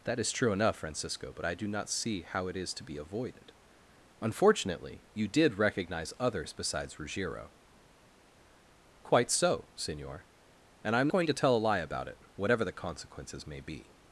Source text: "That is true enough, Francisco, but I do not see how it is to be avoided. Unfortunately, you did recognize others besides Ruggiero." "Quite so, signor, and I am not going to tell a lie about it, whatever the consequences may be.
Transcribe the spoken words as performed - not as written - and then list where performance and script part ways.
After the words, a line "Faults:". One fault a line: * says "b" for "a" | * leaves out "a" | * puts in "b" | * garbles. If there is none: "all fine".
"That is true enough, Francisco, but I do not see how it is to be avoided. Unfortunately, you did recognize others besides Ruggiero." "Quite so, signor, and I am going to tell a lie about it, whatever the consequences may be.
Faults:
* leaves out "not"